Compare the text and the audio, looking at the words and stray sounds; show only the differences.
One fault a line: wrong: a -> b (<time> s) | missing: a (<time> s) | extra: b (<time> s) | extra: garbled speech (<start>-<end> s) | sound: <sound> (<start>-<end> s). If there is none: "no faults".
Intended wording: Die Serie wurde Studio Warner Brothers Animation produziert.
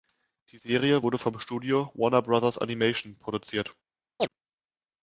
extra: vom (1.2 s)
sound: chirp (4.2-4.3 s)